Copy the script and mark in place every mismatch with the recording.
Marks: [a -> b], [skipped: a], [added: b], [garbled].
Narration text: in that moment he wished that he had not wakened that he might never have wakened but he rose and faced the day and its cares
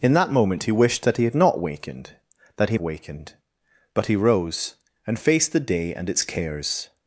in that moment he wished that he had not wakened that he [skipped: might never have] wakened but he rose and faced the day and its cares